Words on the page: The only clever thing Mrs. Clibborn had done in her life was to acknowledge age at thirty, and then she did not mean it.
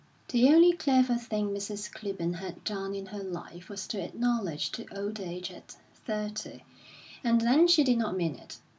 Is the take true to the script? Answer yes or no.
no